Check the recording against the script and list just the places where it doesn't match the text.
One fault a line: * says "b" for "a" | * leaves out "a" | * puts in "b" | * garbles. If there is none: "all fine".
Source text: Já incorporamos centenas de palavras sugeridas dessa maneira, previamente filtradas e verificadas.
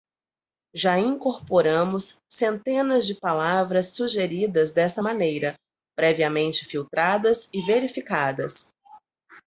all fine